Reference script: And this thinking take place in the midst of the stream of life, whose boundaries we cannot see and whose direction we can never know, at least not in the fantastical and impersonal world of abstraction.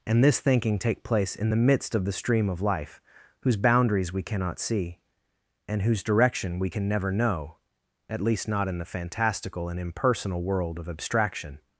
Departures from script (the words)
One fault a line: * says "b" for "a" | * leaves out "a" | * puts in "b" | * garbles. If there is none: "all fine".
all fine